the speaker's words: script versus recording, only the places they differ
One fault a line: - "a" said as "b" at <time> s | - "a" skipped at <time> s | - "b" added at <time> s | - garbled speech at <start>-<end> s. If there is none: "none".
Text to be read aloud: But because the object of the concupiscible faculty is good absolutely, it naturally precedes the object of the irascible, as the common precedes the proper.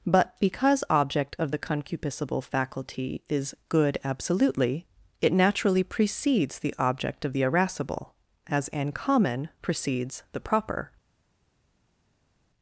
- "the" skipped at 0.8 s
- "the" said as "an" at 8.7 s